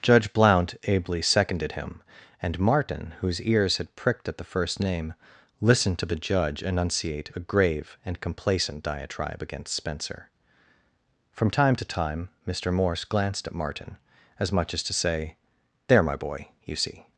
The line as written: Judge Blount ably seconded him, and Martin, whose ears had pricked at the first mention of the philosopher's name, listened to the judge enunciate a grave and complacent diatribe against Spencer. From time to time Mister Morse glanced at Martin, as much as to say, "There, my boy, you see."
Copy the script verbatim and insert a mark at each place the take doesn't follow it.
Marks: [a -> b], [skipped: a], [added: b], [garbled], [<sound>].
Judge Blount ably seconded him, and Martin, whose ears had pricked at the first [skipped: mention of the philosopher's] name, listened to the judge enunciate a grave and complacent diatribe against Spencer. From time to time Mister Morse glanced at Martin, as much as to say, "There, my boy, you see."